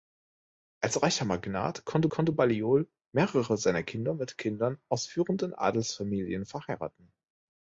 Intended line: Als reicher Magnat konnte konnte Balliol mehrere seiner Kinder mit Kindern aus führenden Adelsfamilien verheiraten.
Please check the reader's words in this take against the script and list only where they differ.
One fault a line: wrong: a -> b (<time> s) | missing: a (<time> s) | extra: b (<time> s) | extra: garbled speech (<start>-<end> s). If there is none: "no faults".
no faults